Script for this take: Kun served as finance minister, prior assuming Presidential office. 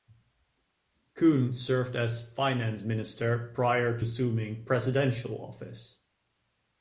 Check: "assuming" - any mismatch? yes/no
no